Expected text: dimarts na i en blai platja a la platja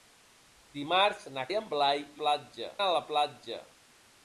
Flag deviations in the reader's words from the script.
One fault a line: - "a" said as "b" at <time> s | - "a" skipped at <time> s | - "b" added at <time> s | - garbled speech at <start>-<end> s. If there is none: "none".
none